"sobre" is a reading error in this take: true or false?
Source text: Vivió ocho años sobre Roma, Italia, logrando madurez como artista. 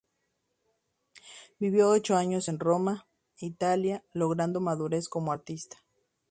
true